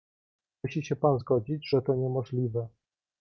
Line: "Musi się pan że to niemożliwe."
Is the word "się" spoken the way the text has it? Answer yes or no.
yes